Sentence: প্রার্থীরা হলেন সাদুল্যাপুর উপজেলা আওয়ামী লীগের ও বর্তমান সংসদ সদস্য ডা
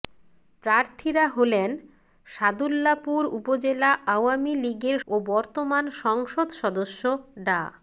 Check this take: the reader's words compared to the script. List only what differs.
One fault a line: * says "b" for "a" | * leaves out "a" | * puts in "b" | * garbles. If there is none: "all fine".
all fine